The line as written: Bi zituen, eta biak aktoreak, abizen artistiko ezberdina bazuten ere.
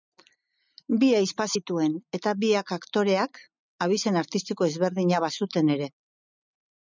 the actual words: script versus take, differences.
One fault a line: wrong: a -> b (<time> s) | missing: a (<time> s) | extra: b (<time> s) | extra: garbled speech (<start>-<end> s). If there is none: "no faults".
extra: ahizpa (1.2 s)